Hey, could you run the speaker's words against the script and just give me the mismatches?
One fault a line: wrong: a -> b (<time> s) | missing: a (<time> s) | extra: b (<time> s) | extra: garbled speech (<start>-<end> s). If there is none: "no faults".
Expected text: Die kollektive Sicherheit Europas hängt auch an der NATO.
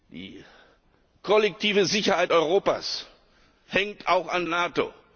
missing: der (4.5 s)